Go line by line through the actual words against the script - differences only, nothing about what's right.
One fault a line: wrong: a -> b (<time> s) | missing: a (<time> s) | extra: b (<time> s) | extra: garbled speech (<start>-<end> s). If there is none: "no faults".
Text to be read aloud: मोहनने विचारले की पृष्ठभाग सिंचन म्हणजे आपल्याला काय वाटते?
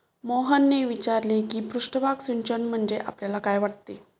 no faults